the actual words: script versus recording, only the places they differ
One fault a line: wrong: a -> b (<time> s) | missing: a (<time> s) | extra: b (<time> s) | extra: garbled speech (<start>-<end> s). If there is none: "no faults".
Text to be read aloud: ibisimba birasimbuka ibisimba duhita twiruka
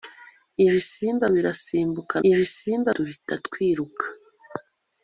no faults